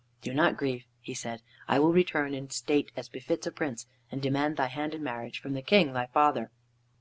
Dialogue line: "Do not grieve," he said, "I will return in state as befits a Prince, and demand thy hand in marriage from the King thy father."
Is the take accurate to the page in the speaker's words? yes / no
yes